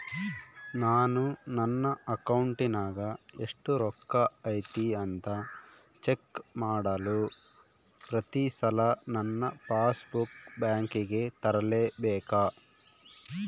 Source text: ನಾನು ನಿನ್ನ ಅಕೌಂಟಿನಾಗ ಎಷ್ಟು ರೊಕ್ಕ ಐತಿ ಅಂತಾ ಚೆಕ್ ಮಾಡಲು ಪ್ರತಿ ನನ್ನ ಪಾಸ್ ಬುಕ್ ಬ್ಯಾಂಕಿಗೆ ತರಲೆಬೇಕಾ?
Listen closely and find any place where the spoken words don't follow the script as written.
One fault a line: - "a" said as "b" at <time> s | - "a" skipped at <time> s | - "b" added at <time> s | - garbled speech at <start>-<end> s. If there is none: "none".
- "ನಿನ್ನ" said as "ನನ್ನ" at 1.6 s
- "ಸಲ" added at 8.6 s